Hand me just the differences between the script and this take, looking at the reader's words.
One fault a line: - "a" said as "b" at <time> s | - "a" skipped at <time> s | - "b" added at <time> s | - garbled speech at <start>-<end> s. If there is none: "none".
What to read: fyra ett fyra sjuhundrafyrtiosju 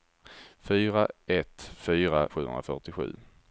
none